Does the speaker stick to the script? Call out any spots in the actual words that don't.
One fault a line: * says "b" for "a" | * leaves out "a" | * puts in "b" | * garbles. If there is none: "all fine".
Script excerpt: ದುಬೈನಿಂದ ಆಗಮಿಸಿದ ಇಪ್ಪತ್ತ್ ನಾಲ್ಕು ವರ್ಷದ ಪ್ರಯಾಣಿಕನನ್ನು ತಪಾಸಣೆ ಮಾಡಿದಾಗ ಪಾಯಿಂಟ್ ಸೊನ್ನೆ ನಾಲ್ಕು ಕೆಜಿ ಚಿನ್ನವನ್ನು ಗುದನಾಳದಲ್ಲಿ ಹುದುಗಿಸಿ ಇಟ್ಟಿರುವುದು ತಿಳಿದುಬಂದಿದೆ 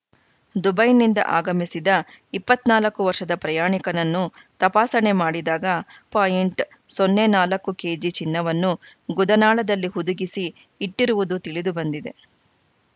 all fine